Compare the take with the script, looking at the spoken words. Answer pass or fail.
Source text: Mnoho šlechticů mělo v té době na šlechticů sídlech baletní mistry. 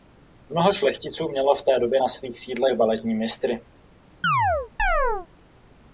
fail